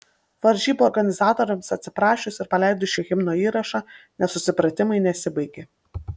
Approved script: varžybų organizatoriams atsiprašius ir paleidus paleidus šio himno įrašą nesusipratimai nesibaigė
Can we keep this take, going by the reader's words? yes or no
no